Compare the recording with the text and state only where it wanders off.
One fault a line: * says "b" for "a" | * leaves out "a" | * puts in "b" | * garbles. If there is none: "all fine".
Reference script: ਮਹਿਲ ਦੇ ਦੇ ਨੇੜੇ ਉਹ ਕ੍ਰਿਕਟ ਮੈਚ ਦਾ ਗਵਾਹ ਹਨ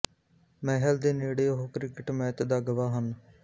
* leaves out "ਦੇ"